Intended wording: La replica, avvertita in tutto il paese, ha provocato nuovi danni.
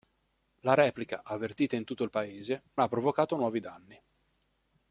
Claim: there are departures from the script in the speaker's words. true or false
false